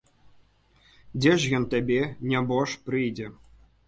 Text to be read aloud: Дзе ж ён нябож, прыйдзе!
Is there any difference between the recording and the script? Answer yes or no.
yes